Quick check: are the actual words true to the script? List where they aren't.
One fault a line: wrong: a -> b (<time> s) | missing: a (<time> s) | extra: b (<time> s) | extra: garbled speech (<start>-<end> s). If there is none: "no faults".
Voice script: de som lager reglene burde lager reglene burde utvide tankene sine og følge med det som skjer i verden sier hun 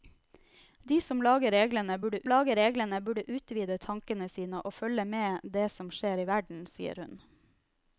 no faults